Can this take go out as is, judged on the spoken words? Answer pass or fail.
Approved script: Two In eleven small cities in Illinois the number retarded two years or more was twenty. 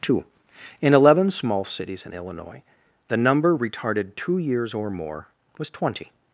pass